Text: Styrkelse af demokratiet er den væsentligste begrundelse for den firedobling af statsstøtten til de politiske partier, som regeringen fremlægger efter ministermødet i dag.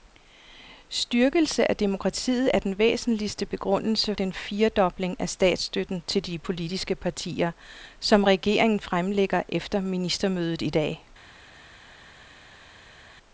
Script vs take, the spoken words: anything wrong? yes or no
yes